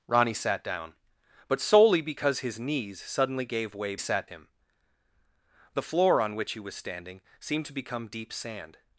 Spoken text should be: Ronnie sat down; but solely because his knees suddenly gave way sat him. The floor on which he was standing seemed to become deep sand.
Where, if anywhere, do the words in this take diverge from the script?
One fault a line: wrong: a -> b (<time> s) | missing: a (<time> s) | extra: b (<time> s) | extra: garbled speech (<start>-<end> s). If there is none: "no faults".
no faults